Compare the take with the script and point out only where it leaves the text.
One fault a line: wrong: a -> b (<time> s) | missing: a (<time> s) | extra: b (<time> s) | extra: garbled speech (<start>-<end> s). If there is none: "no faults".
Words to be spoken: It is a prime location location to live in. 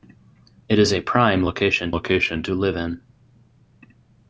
no faults